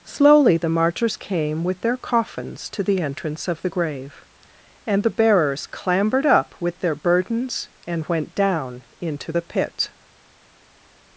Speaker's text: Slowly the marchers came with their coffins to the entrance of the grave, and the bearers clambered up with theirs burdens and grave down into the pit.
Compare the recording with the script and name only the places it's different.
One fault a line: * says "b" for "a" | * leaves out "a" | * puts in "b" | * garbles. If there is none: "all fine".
* says "their" for "theirs"
* says "went" for "grave"